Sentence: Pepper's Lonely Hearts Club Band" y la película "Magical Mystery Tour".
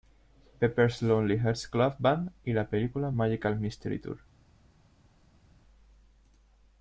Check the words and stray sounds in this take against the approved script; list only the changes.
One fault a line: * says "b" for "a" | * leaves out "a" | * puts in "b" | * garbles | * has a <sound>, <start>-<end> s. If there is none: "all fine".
all fine